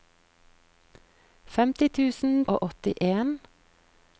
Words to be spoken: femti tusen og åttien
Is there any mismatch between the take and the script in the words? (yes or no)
no